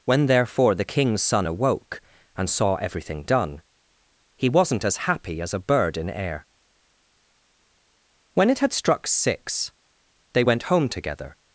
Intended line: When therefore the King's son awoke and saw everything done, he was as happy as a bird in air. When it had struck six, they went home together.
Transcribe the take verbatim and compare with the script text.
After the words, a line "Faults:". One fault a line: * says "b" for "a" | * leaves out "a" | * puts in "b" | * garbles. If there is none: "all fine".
When therefore the King's son awoke and saw everything done, he wasn't as happy as a bird in air. When it had struck six, they went home together.
Faults:
* says "wasn't" for "was"